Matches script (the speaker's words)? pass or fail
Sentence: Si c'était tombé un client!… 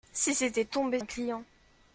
pass